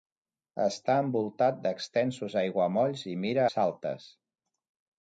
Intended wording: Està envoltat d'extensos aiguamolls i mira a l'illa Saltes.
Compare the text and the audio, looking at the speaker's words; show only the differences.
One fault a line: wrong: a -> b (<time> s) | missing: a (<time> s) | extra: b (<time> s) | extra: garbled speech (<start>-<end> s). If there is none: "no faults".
missing: a l'illa (3.5 s)